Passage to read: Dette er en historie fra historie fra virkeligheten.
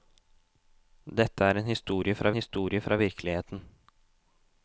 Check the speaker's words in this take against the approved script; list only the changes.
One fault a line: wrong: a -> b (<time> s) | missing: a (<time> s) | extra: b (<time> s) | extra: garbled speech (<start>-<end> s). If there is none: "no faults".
no faults